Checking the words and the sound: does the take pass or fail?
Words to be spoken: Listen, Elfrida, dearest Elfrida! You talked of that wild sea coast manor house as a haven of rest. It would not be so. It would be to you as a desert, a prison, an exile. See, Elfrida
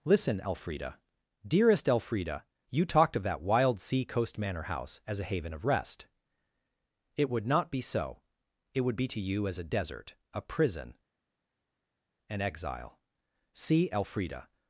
pass